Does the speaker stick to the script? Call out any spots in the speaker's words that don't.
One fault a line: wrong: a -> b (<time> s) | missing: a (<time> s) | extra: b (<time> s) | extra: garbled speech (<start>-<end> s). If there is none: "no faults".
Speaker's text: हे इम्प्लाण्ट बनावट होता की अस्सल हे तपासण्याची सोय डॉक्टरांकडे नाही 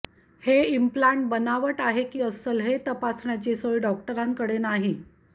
wrong: होता -> आहे (1.8 s)